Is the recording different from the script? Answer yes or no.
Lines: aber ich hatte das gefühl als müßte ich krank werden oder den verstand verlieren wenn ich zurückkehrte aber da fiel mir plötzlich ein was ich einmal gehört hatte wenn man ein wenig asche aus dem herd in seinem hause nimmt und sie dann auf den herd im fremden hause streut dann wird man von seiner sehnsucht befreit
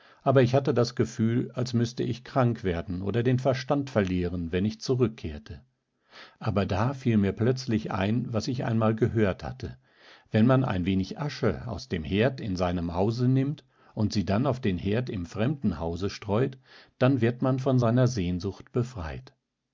no